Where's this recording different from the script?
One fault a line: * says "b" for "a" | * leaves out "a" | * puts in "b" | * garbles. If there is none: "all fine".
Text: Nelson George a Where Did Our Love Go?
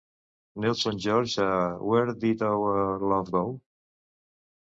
all fine